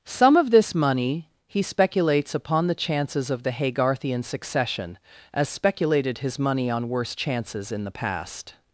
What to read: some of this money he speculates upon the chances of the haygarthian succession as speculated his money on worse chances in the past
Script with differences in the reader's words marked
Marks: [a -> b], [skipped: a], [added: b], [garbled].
some of this money he speculates upon the chances of the haygarthian succession as speculated his money on worse chances in the past